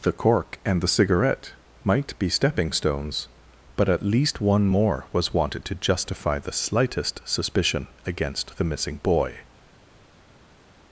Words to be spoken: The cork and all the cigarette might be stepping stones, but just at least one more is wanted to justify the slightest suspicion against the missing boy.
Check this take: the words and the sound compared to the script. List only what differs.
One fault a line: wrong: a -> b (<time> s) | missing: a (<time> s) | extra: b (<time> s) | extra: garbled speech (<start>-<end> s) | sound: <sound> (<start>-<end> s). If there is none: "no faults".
missing: all (0.8 s)
missing: just (3.9 s)
wrong: is -> was (5.1 s)